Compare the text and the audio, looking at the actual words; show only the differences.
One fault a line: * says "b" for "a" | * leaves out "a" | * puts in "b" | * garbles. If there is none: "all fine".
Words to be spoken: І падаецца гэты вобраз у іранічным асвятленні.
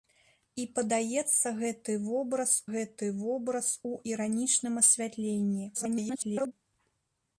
* puts in "гэты вобраз"
* garbles